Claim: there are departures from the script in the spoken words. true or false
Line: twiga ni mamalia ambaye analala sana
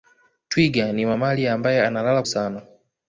false